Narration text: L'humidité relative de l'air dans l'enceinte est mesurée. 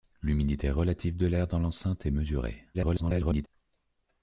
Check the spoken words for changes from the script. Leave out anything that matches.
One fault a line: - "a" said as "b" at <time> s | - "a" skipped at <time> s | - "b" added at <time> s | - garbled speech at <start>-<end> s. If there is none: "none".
- garbled speech at 2.7-3.5 s